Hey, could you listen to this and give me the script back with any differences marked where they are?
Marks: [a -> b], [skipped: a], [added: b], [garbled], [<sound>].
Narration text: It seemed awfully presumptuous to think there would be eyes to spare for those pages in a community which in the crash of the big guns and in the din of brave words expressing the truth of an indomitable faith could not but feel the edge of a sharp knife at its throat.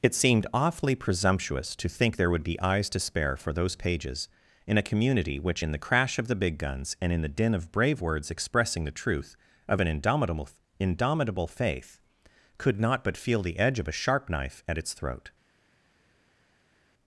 It seemed awfully presumptuous to think there would be eyes to spare for those pages in a community which in the crash of the big guns and in the din of brave words expressing the truth of an indomitable [added: indomitable] faith could not but feel the edge of a sharp knife at its throat.